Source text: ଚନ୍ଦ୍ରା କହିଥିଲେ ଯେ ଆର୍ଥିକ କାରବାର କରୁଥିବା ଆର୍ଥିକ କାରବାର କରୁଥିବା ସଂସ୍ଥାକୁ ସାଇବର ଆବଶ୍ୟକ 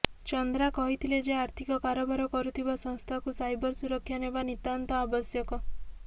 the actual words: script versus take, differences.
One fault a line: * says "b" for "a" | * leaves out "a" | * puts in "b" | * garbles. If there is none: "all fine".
* says "ସଂସ୍ଥାକୁ ସାଇବର ସୁରକ୍ଷା ନେବା ନିତାନ୍ତ" for "ଆର୍ଥିକ କାରବାର କରୁଥିବା ସଂସ୍ଥାକୁ ସାଇବର"